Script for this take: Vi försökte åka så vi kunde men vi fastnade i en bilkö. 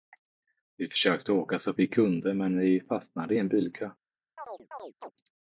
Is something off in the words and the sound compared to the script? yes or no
yes